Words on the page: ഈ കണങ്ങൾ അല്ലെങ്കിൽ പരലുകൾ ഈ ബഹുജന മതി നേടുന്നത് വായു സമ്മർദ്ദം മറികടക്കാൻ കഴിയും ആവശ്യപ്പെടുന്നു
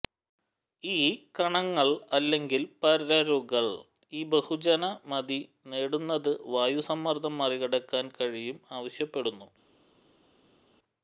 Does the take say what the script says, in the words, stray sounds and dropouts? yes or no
yes